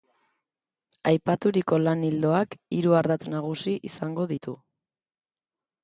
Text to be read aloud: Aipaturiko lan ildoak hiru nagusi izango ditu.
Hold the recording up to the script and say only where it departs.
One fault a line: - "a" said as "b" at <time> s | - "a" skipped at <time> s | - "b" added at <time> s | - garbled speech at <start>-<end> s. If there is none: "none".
- "ardatz" added at 3.0 s